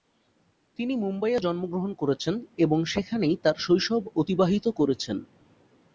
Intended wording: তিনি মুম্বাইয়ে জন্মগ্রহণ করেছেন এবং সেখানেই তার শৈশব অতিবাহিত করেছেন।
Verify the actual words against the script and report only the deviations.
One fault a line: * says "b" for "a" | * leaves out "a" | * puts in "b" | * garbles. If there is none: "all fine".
all fine